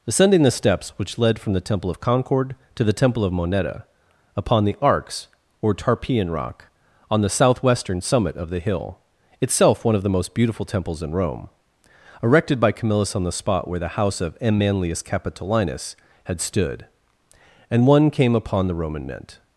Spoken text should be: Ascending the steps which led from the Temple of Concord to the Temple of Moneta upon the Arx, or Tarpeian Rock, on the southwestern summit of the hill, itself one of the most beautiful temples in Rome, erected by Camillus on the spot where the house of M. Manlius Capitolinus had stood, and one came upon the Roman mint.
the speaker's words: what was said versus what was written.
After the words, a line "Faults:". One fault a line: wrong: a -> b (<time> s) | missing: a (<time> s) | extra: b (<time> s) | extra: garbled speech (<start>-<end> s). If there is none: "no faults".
Ascending the steps which led from the Temple of Concord to the Temple of Moneta upon the Arx, or Tarpeian Rock, on the southwestern summit of the hill, itself one of the most beautiful temples in Rome, erected by Camillus on the spot where the house of M. Manlius Capitolinus had stood, and one came upon the Roman mint.
Faults:
no faults